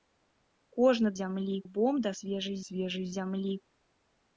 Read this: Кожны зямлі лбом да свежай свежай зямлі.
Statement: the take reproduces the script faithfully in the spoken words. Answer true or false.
true